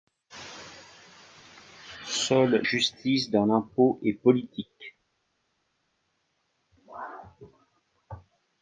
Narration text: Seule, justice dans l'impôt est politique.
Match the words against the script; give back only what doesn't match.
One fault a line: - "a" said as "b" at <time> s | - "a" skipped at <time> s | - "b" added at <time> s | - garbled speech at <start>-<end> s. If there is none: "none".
none